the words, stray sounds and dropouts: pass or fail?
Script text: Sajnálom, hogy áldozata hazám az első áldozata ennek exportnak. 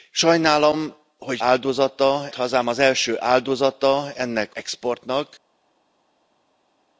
pass